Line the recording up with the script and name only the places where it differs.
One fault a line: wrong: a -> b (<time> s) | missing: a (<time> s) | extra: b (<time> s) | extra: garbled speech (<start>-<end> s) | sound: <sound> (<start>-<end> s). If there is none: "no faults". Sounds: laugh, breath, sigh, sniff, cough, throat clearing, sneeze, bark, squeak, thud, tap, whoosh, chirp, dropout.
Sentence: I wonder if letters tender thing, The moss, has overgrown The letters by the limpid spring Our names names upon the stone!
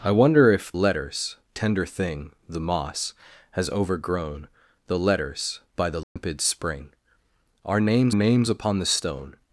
sound: dropout (6.0-6.2 s)